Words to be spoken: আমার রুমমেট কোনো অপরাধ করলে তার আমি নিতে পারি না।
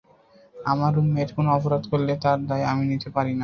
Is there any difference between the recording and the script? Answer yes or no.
yes